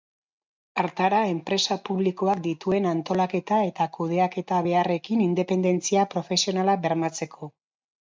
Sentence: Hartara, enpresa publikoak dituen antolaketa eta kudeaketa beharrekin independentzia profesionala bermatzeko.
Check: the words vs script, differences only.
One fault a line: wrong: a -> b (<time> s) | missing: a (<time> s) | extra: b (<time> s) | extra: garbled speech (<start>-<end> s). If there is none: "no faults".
no faults